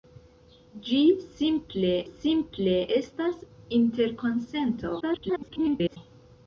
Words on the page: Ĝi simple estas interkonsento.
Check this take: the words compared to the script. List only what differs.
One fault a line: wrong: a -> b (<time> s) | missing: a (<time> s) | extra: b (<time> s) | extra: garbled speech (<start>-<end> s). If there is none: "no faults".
extra: simple (2.1 s)
extra: garbled speech (5.0-6.0 s)